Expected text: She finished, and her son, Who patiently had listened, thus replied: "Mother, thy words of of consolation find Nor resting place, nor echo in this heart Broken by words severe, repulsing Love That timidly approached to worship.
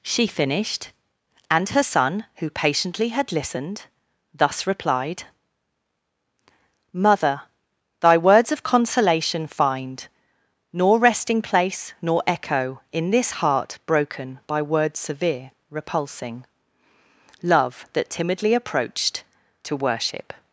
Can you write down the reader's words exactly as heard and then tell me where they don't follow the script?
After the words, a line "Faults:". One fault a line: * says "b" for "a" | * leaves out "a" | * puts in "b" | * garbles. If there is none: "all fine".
She finished, and her son, Who patiently had listened, thus replied: "Mother, thy words of consolation find Nor resting place, nor echo in this heart Broken by words severe, repulsing Love That timidly approached to worship.
Faults:
* leaves out "of"